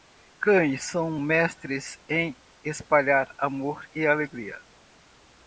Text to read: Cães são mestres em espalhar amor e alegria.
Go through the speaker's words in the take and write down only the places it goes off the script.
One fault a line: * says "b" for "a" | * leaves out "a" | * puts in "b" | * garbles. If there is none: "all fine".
all fine